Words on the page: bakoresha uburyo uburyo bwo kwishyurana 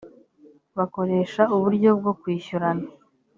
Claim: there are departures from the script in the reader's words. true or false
true